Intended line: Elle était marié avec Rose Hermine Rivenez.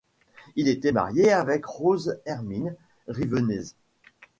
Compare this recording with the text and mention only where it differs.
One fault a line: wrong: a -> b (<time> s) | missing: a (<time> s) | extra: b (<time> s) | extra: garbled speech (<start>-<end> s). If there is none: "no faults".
wrong: Elle -> Il (0.6 s)